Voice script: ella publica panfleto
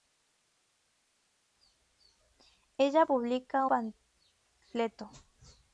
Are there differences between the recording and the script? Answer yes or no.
no